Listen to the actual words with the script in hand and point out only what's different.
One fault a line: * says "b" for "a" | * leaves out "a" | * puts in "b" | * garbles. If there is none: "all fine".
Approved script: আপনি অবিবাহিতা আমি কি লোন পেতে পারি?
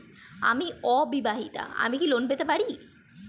* says "আমি" for "আপনি"